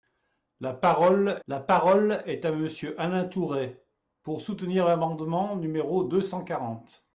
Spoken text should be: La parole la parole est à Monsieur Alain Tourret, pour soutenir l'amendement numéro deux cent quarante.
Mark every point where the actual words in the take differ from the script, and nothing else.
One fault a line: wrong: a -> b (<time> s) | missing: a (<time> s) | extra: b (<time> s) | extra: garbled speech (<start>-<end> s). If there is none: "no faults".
no faults